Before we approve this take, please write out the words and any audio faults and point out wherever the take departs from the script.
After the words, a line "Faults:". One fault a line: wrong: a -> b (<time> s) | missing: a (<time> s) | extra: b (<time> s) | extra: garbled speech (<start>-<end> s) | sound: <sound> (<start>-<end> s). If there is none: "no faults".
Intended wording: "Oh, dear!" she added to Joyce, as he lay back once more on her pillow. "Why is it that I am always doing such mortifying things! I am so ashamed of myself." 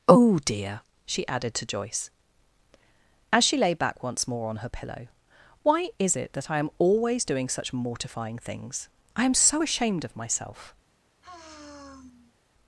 "Oh, dear!" she added to Joyce, as she lay back once more on her pillow. "Why is it that I am always doing such mortifying things! I am so ashamed of myself."
Faults:
wrong: he -> she (3.4 s)
sound: sigh (11.2-12.4 s)